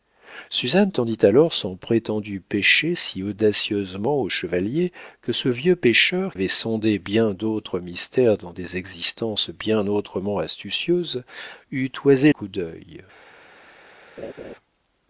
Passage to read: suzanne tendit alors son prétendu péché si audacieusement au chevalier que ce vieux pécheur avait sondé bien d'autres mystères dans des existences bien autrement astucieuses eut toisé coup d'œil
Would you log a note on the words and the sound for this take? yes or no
yes